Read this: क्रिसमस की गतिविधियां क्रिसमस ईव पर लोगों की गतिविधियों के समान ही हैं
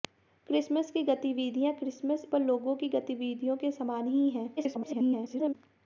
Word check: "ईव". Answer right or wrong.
wrong